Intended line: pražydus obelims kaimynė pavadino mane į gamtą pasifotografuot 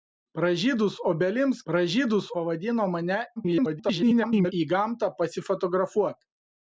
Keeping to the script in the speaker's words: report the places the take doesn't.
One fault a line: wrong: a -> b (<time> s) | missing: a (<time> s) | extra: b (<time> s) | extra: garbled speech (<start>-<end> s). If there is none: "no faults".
wrong: kaimynė -> pražydus (1.7 s)
extra: garbled speech (3.4-4.5 s)